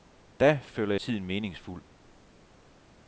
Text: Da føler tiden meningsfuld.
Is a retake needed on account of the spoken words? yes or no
no